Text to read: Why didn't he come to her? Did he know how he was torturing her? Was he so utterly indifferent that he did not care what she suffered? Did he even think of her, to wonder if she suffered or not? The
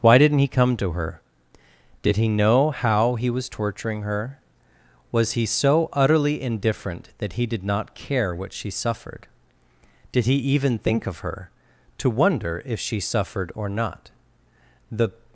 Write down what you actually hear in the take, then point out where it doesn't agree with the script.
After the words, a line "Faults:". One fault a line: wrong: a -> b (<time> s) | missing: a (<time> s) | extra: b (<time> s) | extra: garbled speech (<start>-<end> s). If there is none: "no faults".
Why didn't he come to her? Did he know how he was torturing her? Was he so utterly indifferent that he did not care what she suffered? Did he even think of her, to wonder if she suffered or not? The
Faults:
no faults